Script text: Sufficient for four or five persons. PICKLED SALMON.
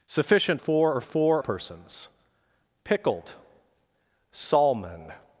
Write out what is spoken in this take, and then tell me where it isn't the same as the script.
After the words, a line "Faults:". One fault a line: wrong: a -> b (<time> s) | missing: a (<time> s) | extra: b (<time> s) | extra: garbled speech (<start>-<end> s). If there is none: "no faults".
Sufficient four or four persons. PICKLED SALMON.
Faults:
missing: for (0.6 s)
wrong: five -> four (1.0 s)